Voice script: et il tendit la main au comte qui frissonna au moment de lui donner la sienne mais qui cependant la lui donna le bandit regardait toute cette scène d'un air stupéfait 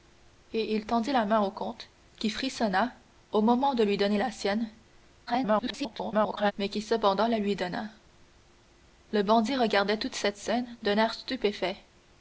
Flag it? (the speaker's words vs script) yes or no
yes